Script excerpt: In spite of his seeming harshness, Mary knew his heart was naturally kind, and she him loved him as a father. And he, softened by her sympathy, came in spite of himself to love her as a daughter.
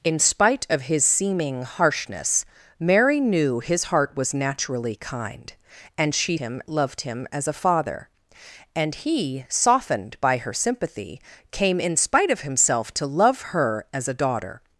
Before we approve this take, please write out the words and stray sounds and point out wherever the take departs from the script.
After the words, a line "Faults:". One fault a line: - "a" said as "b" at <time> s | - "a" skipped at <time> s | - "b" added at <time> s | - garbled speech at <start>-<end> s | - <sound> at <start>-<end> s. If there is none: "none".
In spite of his seeming harshness, Mary knew his heart was naturally kind, and she him loved him as a father. And he, softened by her sympathy, came in spite of himself to love her as a daughter.
Faults:
none